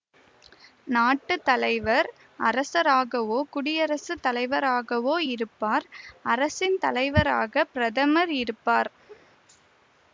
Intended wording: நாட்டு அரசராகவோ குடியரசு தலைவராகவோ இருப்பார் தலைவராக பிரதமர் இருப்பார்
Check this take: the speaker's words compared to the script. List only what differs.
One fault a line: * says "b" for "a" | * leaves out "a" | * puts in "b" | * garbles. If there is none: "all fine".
* puts in "தலைவர்"
* puts in "அரசின்"